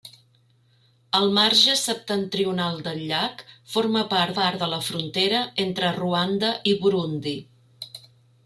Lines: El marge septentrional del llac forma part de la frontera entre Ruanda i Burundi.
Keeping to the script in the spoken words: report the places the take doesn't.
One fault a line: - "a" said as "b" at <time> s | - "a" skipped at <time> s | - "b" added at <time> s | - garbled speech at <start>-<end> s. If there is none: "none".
- "part" added at 4.4 s